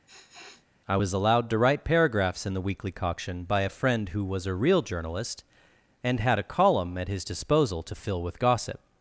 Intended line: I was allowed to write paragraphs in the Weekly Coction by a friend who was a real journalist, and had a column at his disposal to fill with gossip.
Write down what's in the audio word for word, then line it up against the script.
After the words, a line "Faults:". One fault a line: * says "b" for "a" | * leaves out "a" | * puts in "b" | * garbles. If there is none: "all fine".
I was allowed to write paragraphs in the Weekly Coction by a friend who was a real journalist, and had a column at his disposal to fill with gossip.
Faults:
all fine